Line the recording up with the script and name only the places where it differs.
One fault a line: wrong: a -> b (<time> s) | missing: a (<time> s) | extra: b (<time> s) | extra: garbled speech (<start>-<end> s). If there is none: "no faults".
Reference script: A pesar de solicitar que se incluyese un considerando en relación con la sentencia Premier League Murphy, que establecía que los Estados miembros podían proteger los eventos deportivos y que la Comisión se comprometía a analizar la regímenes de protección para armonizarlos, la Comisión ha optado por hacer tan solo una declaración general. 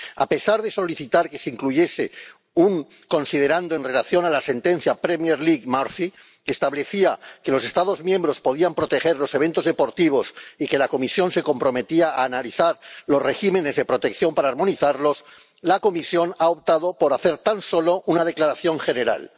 wrong: la -> los (13.1 s)